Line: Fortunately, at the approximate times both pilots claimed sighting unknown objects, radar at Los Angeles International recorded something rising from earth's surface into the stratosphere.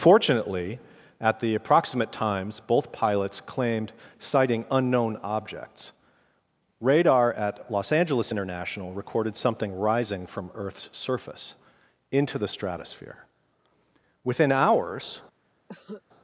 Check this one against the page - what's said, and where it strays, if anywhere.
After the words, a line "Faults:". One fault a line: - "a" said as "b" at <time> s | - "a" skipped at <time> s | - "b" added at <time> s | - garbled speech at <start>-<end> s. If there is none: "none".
Fortunately, at the approximate times both pilots claimed sighting unknown objects, radar at Los Angeles International recorded something rising from earth's surface into the stratosphere. Within hours
Faults:
- "Within hours" added at 14.2 s